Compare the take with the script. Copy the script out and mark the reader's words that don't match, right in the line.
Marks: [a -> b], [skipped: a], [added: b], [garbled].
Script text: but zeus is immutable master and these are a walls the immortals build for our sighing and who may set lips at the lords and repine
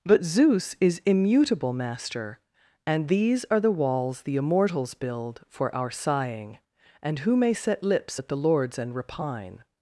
but zeus is immutable master and these are [a -> the] walls the immortals build for our sighing and who may set lips at the lords and repine